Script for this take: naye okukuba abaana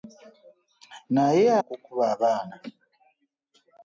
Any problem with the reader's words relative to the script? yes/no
no